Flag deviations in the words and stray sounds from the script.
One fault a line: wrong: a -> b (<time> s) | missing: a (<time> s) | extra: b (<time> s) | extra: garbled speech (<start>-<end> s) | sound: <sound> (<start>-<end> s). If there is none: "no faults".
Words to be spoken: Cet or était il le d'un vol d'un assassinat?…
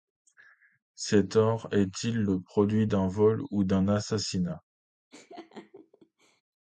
wrong: était -> est (1.7 s)
extra: produit (2.4 s)
extra: ou (3.5 s)
sound: laugh (5.1-6.4 s)